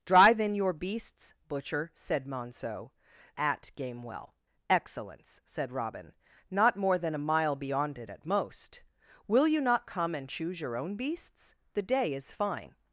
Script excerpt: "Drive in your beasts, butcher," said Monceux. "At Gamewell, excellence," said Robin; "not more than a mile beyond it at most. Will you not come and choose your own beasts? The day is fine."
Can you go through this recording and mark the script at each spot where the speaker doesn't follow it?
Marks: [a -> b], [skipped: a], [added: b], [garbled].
"Drive in your beasts, butcher," said Monceux. "At Gamewell, excellence," said Robin; "not more than a mile beyond it at most. Will you not come and choose your own beasts? The day is fine."